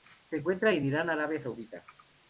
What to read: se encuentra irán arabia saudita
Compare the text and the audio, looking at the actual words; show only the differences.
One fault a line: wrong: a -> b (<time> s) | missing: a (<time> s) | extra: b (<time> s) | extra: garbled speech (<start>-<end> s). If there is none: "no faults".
extra: en (0.7 s)